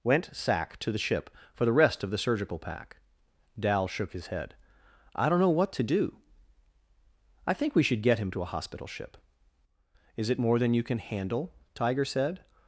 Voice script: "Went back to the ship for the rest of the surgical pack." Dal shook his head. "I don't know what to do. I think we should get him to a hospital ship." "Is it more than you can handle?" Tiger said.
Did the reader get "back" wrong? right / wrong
wrong